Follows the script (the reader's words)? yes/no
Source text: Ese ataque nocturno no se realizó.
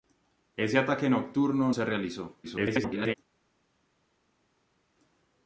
no